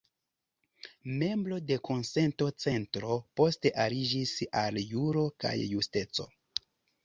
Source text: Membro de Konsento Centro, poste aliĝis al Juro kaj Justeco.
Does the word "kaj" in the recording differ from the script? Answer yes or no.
no